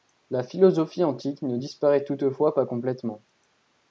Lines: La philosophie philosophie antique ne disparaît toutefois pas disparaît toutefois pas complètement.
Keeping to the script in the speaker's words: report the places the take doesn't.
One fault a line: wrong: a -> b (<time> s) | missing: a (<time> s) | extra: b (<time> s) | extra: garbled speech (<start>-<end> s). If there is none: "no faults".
missing: philosophie (1.0 s)
missing: disparaît toutefois pas (2.7 s)